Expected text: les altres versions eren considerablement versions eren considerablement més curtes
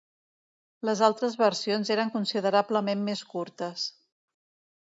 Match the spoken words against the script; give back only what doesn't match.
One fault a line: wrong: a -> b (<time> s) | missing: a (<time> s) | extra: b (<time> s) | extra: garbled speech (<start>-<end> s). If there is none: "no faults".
missing: versions eren considerablement (3.1 s)